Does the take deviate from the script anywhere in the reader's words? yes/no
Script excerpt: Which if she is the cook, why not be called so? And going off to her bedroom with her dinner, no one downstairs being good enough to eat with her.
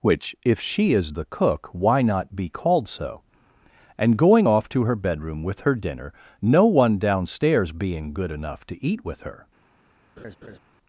no